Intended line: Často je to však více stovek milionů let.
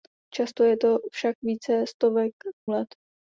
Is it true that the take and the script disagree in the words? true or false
true